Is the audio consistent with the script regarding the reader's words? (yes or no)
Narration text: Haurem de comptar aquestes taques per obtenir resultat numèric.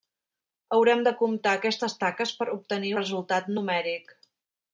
yes